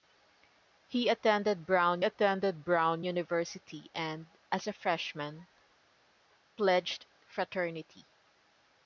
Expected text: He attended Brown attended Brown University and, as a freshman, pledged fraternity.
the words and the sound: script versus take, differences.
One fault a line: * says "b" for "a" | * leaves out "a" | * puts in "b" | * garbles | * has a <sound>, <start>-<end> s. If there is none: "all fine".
all fine